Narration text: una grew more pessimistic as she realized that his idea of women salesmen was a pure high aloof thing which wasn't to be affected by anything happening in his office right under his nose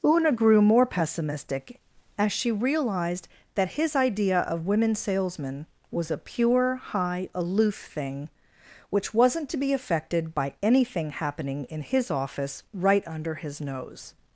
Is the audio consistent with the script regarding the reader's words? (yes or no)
yes